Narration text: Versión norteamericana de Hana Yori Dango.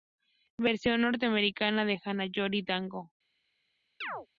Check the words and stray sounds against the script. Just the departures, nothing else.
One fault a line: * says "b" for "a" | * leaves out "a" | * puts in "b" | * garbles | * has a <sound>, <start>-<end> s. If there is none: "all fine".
* has a chirp, 4.0-4.3 s